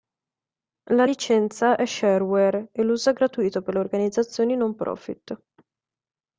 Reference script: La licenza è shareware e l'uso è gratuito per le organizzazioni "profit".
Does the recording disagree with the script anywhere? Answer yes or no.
yes